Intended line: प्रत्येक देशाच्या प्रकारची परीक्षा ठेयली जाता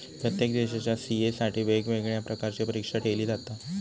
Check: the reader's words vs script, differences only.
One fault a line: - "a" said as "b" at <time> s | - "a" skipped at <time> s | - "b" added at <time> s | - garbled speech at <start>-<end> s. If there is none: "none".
- "सी.ए साठी वेगवेगळ्या" added at 0.9 s